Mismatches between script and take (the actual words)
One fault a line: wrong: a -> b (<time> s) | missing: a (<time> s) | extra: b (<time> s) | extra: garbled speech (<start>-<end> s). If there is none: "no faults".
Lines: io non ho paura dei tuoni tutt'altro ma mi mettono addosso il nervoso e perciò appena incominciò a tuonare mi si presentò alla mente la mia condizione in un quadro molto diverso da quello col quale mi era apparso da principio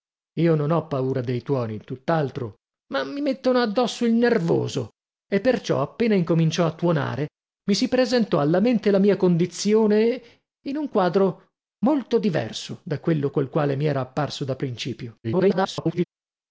extra: garbled speech (15.2-16.0 s)